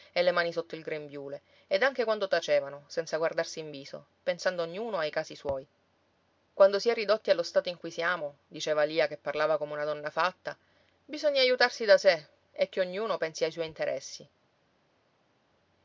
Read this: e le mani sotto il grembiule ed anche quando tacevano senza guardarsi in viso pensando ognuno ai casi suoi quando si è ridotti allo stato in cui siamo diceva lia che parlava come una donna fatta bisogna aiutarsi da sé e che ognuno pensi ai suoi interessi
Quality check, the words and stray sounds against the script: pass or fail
pass